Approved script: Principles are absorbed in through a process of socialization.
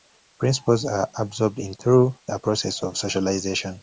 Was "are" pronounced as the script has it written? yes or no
yes